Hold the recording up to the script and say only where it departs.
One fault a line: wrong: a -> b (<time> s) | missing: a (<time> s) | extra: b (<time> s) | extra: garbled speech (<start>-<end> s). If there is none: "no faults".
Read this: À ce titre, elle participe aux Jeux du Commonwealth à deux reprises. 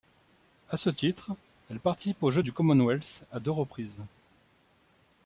no faults